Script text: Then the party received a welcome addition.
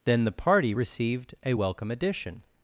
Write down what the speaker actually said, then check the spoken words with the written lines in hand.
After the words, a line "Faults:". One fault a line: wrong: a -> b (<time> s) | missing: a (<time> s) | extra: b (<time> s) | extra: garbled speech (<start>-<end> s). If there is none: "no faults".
Then the party received a welcome addition.
Faults:
no faults